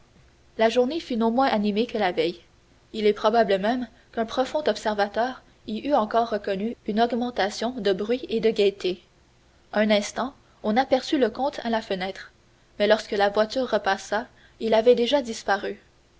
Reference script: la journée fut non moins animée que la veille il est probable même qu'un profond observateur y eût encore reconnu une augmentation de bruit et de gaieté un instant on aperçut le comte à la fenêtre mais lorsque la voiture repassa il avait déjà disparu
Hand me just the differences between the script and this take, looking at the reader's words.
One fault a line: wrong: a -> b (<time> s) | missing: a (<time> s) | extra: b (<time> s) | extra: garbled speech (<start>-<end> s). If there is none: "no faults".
no faults